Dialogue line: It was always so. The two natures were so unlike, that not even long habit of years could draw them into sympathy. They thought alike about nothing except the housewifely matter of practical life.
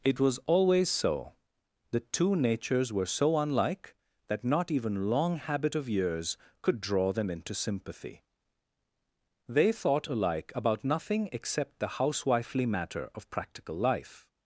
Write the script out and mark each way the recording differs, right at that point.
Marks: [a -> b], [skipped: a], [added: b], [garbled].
It was always so. The two natures were so unlike, that not even long habit of years could draw them into sympathy. They thought alike about nothing except the housewifely matter of practical life.